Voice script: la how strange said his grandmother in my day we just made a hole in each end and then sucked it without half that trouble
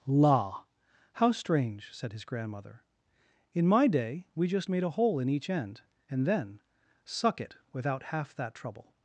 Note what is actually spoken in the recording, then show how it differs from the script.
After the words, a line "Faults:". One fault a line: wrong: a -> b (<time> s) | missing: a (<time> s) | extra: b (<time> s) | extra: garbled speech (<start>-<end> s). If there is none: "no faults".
la how strange said his grandmother in my day we just made a hole in each end and then suck it without half that trouble
Faults:
wrong: sucked -> suck (7.0 s)